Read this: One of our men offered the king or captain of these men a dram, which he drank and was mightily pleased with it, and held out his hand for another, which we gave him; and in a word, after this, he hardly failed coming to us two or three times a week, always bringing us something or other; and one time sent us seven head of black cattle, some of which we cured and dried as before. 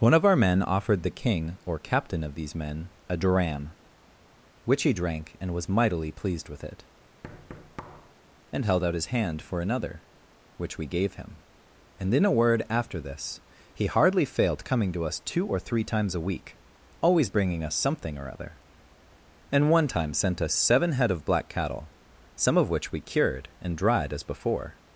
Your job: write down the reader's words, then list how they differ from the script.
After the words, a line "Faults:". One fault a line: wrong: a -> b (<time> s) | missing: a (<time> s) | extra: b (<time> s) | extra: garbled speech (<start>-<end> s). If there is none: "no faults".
One of our men offered the king or captain of these men a dram, which he drank and was mightily pleased with it, and held out his hand for another, which we gave him; and in a word, after this, he hardly failed coming to us two or three times a week, always bringing us something or other; and one time sent us seven head of black cattle, some of which we cured and dried as before.
Faults:
no faults